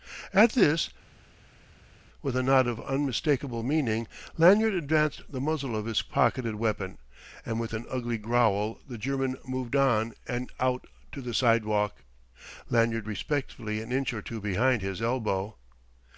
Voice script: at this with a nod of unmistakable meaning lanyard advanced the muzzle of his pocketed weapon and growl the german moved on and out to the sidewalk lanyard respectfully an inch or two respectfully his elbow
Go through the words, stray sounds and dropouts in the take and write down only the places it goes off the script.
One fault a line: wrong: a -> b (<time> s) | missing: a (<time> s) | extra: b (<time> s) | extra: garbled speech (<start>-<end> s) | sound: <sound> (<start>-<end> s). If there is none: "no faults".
extra: with an ugly (7.6 s)
wrong: respectfully -> behind (14.4 s)